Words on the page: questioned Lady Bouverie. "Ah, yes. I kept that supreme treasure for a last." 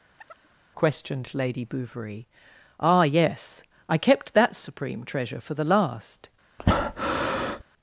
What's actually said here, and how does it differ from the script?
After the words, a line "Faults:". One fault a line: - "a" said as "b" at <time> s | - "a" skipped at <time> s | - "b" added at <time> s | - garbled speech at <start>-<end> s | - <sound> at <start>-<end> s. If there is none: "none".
questioned Lady Bouverie. "Ah, yes. I kept that supreme treasure for the last."
Faults:
- chirp at 0.2-0.5 s
- "a" said as "the" at 5.5 s
- breath at 6.6-7.6 s